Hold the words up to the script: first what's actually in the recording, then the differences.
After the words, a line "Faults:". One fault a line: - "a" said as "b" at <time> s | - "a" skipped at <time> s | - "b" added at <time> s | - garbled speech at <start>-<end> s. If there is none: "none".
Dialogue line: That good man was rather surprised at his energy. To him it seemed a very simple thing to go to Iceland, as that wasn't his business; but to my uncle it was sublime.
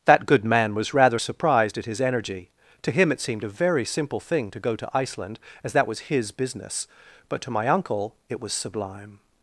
That good man was rather surprised at his energy. To him it seemed a very simple thing to go to Iceland, as that was his business; but to my uncle it was sublime.
Faults:
- "wasn't" said as "was" at 5.9 s